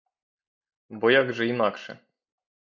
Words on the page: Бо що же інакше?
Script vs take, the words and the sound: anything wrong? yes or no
yes